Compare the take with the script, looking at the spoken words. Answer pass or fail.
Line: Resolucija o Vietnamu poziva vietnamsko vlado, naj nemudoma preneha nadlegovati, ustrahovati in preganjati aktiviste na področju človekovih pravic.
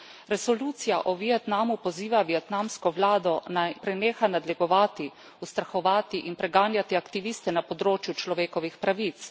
fail